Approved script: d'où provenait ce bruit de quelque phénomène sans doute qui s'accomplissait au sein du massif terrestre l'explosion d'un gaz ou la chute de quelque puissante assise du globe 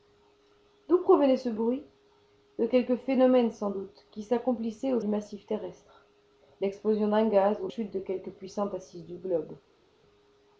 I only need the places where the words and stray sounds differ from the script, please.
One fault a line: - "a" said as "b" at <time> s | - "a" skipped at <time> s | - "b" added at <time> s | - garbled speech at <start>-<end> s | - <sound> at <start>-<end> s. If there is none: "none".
- "sein" skipped at 5.0 s
- "la" skipped at 7.7 s